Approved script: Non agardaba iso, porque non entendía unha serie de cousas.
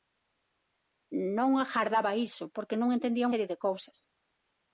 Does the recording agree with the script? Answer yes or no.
no